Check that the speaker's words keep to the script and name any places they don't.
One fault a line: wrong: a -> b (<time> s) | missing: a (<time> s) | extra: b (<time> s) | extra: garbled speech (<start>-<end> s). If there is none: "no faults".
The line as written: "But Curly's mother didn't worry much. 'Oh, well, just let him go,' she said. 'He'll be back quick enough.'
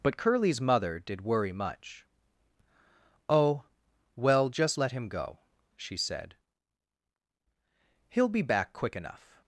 wrong: didn't -> did (1.0 s)